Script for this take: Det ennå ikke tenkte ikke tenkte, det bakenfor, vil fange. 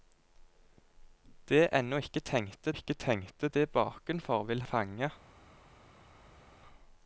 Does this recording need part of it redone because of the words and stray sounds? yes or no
no